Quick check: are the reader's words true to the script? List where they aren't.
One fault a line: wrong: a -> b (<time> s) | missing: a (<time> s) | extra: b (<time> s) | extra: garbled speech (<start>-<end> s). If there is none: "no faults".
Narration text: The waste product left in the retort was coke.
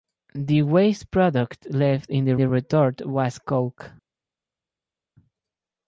extra: the (2.4 s)